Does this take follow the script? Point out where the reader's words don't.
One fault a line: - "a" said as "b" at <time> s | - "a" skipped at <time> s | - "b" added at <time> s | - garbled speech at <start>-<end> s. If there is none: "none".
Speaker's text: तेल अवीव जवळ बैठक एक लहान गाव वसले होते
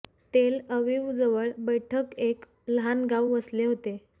none